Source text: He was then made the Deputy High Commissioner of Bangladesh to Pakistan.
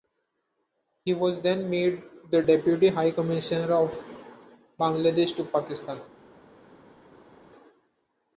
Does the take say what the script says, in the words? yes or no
yes